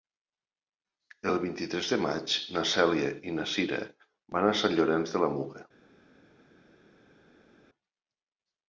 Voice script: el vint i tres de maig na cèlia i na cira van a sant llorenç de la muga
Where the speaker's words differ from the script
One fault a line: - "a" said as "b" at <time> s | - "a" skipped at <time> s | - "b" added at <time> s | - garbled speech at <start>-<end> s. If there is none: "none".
none